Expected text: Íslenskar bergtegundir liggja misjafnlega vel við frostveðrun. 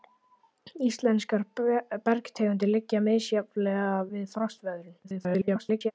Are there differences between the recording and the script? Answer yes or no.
yes